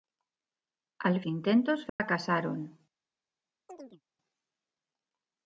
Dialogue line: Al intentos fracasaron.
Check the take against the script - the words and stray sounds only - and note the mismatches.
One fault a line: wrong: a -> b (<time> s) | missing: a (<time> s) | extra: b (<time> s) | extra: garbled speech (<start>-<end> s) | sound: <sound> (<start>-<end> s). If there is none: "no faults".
sound: dropout (1.9-2.0 s)
sound: chirp (3.7-4.0 s)